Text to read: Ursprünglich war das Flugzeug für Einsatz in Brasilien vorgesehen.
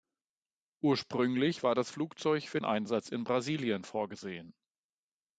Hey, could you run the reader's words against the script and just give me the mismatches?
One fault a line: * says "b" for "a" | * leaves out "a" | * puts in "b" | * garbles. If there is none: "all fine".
all fine